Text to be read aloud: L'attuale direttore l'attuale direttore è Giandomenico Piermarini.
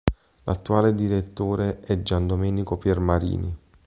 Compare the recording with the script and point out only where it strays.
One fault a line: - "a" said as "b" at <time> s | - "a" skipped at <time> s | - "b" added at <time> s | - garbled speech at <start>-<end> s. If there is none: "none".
- "l'attuale direttore" skipped at 1.8 s